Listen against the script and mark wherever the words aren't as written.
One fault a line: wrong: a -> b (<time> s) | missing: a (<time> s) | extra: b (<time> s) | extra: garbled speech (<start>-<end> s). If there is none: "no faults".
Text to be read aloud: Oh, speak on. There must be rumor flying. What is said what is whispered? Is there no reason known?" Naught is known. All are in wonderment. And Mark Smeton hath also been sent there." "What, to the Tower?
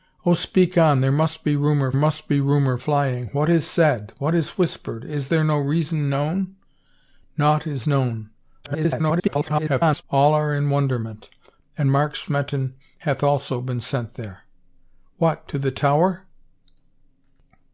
extra: must be rumor (1.9 s)
extra: garbled speech (8.6-10.0 s)